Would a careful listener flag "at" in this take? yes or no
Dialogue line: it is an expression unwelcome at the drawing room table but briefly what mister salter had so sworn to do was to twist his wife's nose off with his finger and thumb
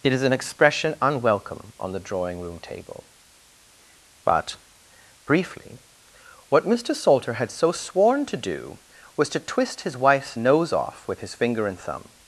yes